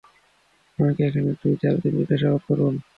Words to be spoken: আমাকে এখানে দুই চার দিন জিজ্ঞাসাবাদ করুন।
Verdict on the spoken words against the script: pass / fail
pass